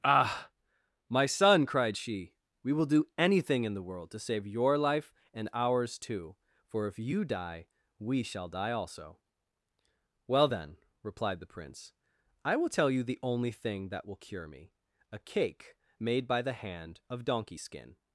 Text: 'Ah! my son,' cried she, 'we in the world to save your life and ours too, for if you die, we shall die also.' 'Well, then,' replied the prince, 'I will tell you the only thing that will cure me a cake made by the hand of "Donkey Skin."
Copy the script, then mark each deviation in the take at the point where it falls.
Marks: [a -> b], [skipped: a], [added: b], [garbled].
'Ah! my son,' cried she, 'we [added: will do anything] in the world to save your life and ours too, for if you die, we shall die also.' 'Well, then,' replied the prince, 'I will tell you the only thing that will cure me a cake made by the hand of "Donkey Skin."